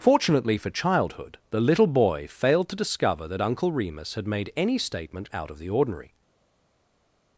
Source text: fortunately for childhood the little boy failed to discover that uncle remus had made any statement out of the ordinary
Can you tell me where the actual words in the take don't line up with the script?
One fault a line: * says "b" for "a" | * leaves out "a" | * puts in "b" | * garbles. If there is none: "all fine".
all fine